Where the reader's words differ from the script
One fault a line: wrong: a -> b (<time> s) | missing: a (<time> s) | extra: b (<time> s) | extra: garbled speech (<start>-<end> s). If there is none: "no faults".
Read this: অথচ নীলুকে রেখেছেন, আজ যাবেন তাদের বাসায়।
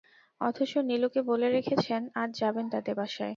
extra: বলে (1.3 s)